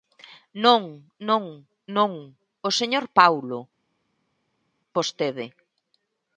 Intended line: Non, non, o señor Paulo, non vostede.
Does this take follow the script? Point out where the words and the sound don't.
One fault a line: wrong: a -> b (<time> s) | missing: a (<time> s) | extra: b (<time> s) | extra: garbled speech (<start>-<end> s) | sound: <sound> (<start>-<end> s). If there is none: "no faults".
extra: non (2.0 s)
missing: non (3.6 s)